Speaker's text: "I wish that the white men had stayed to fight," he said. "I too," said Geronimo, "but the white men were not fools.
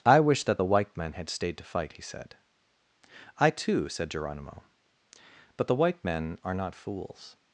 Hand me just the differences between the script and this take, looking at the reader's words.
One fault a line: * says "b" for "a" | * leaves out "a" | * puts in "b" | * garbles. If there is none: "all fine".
* says "are" for "were"